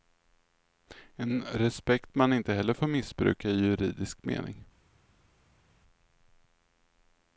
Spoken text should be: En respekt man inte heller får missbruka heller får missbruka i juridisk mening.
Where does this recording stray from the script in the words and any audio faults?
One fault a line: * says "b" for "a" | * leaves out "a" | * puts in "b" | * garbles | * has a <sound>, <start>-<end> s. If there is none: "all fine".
* leaves out "heller får missbruka"